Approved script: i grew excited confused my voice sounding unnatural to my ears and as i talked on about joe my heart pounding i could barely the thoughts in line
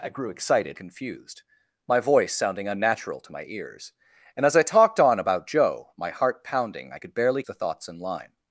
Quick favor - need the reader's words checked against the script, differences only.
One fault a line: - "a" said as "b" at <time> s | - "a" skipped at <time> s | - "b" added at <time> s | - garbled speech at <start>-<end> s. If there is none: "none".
none